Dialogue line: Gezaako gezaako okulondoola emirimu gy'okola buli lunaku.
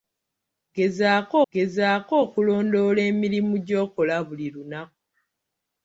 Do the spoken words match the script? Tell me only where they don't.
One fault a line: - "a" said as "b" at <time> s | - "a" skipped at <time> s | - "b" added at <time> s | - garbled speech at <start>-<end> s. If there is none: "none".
none